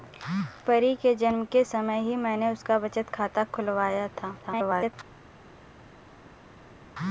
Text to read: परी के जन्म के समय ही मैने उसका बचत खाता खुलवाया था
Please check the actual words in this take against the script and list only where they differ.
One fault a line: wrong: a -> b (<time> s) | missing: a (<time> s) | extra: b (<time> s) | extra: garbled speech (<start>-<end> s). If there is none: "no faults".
extra: garbled speech (4.4-4.9 s)